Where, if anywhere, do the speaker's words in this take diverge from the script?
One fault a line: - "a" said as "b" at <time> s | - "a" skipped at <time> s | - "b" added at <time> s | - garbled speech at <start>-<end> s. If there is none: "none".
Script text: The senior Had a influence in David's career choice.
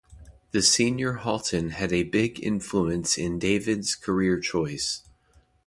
- "Halton" added at 1.1 s
- "big" added at 2.0 s